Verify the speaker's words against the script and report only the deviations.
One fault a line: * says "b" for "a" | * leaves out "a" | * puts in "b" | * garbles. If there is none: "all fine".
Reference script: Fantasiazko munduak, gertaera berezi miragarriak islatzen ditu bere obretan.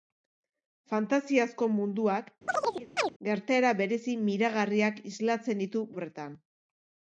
* leaves out "bere"